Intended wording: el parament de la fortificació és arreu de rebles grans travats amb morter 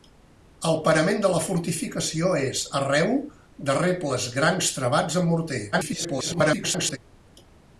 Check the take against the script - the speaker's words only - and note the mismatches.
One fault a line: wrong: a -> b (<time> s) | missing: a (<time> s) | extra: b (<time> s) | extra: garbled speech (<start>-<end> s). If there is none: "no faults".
extra: garbled speech (5.7-7.0 s)